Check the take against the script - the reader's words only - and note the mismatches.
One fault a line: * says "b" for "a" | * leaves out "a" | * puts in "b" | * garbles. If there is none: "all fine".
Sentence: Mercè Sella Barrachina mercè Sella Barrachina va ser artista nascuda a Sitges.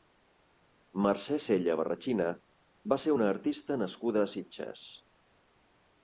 * leaves out "mercè Sella Barrachina"
* puts in "una"